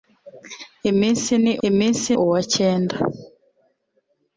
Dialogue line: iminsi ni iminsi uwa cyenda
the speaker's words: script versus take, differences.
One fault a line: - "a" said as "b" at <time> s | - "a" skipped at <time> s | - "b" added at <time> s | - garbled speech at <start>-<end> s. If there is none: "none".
none